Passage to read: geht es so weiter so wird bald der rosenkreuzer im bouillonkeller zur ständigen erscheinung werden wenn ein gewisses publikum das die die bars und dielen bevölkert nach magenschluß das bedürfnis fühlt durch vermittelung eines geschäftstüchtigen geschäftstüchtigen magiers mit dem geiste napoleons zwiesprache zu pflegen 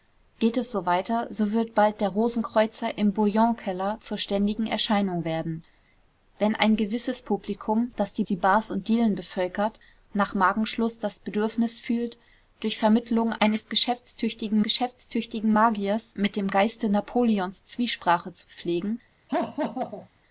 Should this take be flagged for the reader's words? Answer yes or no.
no